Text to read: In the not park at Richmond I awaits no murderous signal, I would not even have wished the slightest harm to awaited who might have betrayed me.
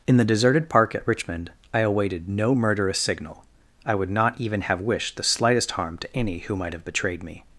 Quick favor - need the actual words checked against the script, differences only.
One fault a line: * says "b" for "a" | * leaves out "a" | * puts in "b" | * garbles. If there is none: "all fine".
* says "deserted" for "not"
* says "awaited" for "awaits"
* says "any" for "awaited"